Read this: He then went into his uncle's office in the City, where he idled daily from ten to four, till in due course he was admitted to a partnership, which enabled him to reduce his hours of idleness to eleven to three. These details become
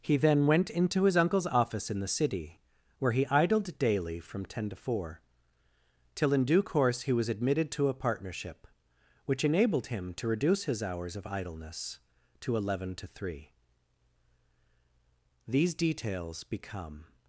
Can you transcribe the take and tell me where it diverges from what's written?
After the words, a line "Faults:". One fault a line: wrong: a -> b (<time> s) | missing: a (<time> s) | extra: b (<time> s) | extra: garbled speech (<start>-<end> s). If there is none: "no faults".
He then went into his uncle's office in the City, where he idled daily from ten to four, till in due course he was admitted to a partnership, which enabled him to reduce his hours of idleness to eleven to three. These details become
Faults:
no faults